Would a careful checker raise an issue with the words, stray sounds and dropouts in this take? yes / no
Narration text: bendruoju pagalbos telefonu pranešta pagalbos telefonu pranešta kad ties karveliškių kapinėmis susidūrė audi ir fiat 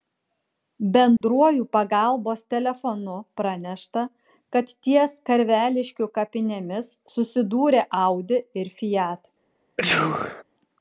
yes